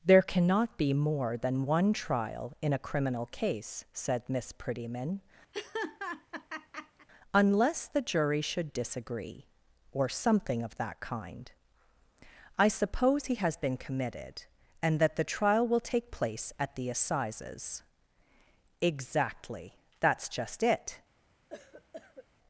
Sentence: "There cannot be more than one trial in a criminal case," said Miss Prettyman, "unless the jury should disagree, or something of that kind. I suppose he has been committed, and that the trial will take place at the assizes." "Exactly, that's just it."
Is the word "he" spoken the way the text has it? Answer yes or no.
yes